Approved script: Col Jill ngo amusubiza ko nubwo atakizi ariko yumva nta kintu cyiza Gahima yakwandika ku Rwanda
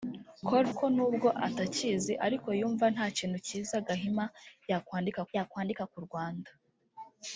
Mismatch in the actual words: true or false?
true